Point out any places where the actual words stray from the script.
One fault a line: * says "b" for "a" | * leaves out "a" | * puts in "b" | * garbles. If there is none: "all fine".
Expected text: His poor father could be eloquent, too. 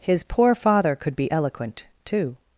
all fine